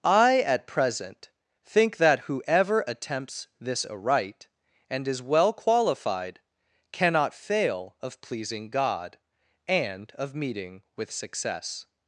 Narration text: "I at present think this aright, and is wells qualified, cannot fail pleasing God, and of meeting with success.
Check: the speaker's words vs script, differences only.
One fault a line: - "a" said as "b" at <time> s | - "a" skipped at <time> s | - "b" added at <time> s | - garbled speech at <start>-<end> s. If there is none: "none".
- "that whoever attempts" added at 2.0 s
- "wells" said as "well" at 5.2 s
- "of" added at 8.0 s